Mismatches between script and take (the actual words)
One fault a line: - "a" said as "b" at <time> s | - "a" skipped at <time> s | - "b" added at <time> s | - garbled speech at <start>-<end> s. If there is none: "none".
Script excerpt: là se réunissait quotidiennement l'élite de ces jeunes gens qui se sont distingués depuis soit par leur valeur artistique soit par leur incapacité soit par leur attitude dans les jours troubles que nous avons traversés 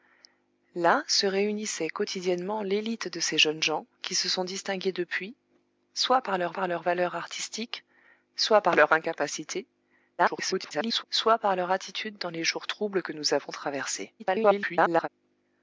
- "par leur" added at 6.5 s
- garbled speech at 10.2-11.0 s
- garbled speech at 14.2-15.1 s